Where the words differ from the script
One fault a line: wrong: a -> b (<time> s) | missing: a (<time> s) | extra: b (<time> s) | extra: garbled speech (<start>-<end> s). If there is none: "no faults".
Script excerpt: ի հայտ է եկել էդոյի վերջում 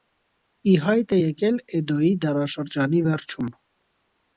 extra: դարաշրջանի (2.3 s)